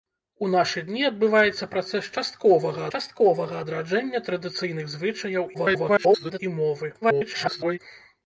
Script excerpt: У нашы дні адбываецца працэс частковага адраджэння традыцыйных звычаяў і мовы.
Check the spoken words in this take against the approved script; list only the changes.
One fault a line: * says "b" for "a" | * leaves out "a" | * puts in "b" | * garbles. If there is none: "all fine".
* puts in "частковага"
* garbles
* garbles